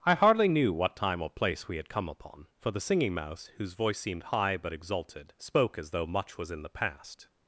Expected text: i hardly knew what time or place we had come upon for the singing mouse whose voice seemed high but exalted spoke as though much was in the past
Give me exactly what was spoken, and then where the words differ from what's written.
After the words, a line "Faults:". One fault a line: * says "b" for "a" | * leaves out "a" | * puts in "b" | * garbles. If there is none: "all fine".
i hardly knew what time or place we had come upon for the singing mouse whose voice seemed high but exalted spoke as though much was in the past
Faults:
all fine